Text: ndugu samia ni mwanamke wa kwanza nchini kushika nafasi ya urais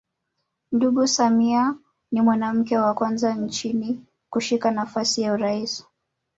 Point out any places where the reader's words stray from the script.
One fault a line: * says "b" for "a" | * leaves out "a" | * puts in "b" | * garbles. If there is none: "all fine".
all fine